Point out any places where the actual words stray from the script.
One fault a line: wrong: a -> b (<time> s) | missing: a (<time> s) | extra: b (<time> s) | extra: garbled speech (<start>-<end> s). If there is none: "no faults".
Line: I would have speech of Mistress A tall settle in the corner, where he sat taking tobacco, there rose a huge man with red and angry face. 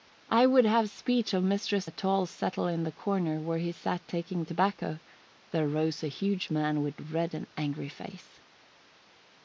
no faults